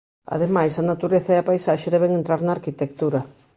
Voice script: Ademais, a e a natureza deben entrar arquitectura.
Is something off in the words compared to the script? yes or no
yes